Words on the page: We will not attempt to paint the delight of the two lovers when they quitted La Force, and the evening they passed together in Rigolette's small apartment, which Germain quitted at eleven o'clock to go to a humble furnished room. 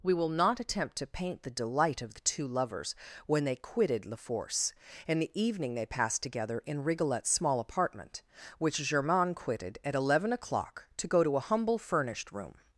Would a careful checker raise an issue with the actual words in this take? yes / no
no